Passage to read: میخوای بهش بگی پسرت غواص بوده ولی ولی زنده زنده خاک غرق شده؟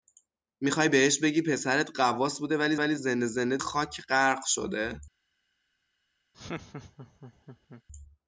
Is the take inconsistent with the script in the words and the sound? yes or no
yes